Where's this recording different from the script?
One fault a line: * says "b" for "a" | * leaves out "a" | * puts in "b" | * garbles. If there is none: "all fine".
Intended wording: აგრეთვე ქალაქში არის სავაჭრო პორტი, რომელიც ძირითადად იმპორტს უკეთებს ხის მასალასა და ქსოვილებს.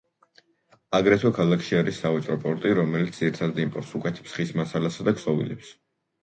all fine